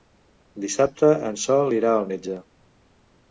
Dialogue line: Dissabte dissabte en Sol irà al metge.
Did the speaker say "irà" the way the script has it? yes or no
yes